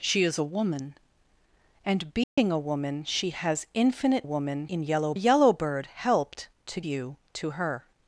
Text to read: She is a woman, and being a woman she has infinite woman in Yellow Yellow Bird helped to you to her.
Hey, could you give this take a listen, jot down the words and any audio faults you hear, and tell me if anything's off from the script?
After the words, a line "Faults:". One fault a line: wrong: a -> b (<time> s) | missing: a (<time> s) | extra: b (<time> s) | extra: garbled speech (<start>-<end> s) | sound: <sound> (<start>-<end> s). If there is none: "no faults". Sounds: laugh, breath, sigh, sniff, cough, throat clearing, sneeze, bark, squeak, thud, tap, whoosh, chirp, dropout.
She is a woman, and being a woman she has infinite woman in Yellow Yellow Bird helped to you to her.
Faults:
sound: dropout (2.2-2.4 s)